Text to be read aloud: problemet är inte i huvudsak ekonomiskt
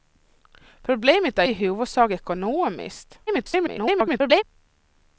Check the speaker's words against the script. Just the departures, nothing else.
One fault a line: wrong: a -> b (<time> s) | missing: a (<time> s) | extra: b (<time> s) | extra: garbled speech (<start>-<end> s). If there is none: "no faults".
missing: inte (1.4 s)
extra: garbled speech (3.3-4.4 s)